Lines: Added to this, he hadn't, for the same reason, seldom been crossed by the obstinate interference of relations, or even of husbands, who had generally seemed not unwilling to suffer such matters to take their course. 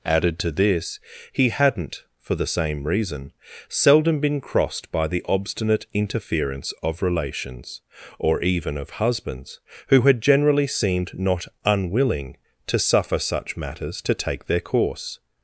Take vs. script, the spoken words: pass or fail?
pass